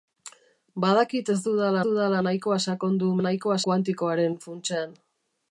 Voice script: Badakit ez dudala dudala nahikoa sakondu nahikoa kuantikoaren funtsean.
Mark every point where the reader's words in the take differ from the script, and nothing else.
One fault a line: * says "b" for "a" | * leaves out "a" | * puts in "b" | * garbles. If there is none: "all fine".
all fine